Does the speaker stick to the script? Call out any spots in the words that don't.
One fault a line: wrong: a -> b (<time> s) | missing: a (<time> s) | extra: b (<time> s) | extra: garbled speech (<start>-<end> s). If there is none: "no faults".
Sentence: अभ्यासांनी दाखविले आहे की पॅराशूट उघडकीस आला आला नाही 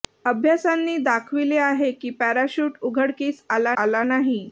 no faults